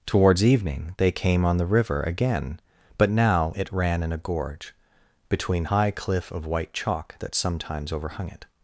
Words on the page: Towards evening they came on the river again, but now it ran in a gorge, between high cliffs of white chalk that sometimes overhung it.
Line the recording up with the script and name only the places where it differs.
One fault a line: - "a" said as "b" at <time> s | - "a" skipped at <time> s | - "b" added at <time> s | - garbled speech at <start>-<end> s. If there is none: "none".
- "cliffs" said as "cliff" at 5.9 s